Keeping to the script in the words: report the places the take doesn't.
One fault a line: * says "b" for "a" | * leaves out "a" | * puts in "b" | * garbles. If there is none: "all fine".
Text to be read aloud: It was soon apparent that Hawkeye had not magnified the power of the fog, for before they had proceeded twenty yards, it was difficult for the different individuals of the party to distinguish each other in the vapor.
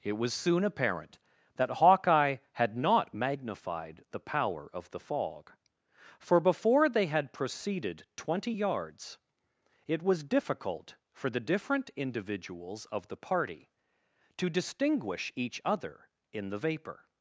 all fine